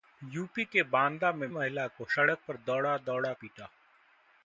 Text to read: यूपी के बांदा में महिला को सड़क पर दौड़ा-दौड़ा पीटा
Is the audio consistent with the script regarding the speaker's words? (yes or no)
yes